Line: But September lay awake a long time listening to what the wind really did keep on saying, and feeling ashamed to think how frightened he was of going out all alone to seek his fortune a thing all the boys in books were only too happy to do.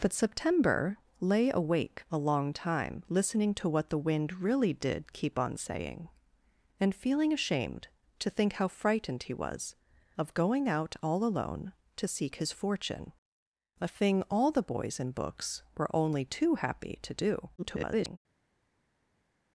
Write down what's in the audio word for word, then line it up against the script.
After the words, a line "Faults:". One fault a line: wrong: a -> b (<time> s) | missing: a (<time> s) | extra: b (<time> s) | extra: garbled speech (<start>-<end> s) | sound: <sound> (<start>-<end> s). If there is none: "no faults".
But September lay awake a long time listening to what the wind really did keep on saying, and feeling ashamed to think how frightened he was of going out all alone to seek his fortune a thing all the boys in books were only too happy to do. [garbled]
Faults:
extra: garbled speech (17.6-18.2 s)